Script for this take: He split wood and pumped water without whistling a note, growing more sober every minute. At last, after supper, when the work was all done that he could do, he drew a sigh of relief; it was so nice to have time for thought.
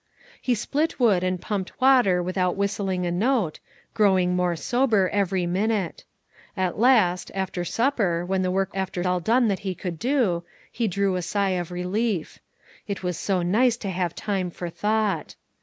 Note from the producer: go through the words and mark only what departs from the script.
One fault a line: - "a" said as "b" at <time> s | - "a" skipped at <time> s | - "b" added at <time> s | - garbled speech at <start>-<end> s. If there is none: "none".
- "was" said as "after" at 8.7 s